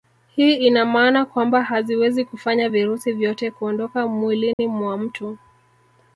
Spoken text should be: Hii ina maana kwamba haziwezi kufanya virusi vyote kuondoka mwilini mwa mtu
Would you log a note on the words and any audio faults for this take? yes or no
yes